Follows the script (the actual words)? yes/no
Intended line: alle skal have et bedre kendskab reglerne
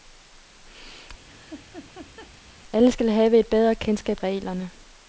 yes